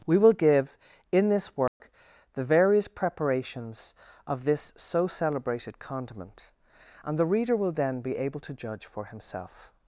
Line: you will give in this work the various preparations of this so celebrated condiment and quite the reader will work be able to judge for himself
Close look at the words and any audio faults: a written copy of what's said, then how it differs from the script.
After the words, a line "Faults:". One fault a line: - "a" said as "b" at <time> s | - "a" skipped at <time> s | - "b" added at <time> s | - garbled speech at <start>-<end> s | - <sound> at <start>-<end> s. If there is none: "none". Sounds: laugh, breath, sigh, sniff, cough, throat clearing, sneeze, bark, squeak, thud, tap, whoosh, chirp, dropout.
we will give in this work the various preparations of this so celebrated condiment and the reader will then be able to judge for himself
Faults:
- "you" said as "we" at 0.1 s
- dropout at 1.7-1.8 s
- "quite" skipped at 7.2 s
- "work" said as "then" at 7.7 s